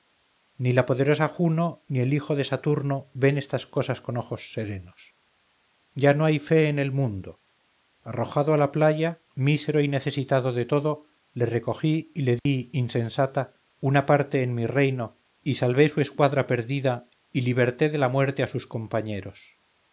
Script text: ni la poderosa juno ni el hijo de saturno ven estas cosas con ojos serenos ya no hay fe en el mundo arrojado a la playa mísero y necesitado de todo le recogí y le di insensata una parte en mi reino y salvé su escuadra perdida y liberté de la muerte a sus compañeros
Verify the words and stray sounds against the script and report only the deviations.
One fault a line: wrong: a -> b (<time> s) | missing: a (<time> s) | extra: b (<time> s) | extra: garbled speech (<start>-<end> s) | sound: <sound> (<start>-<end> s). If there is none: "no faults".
sound: dropout (12.4-12.5 s)